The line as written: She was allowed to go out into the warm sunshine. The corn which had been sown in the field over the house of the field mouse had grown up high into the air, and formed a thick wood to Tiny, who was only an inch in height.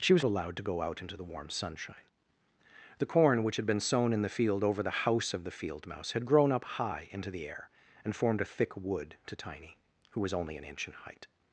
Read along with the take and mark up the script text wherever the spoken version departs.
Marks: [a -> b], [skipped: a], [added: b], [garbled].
She was allowed to go out into the warm sunshine. The corn which had been sown in the field over the house of the field mouse had grown up high into the air, and formed a thick wood to Tiny, who was only an inch in height.